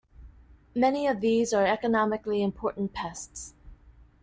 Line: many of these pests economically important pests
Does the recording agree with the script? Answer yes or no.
no